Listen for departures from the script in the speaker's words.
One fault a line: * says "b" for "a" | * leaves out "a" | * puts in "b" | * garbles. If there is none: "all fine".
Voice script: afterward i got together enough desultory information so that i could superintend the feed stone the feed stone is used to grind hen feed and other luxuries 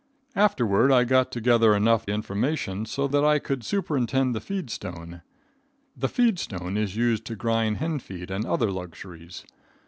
* leaves out "desultory"